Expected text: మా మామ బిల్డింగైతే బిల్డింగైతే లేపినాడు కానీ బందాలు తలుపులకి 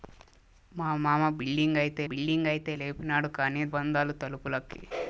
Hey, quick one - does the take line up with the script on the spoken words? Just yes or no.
yes